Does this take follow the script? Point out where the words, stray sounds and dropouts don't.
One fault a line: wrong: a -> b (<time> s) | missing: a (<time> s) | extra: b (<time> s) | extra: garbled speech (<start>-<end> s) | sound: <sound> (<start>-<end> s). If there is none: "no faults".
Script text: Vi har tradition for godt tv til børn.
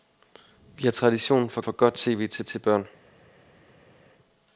extra: for (1.6 s)
extra: til (2.4 s)